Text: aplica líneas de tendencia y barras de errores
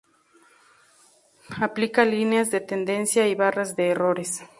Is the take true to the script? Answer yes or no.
yes